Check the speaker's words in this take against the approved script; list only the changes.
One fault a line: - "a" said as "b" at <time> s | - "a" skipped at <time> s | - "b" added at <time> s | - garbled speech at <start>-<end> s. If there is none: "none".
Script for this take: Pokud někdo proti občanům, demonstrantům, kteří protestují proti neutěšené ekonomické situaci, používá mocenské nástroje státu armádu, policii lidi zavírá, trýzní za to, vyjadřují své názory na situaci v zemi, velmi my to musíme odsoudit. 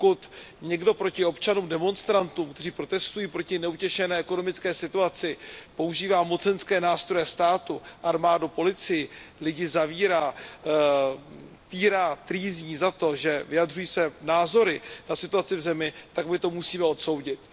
- "týrá" added at 11.7 s
- "že" added at 13.1 s
- "velmi" said as "tak" at 16.1 s